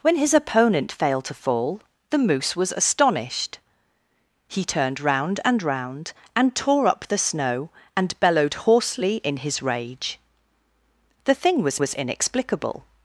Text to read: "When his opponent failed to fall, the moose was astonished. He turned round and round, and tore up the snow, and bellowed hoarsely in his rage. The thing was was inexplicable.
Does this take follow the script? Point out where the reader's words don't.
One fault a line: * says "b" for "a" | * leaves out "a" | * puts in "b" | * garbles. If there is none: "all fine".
all fine